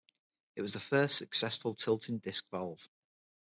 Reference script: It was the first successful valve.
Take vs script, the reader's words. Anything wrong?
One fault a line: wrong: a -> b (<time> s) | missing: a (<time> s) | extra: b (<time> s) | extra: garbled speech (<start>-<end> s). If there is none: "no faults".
extra: tilting disc (1.8 s)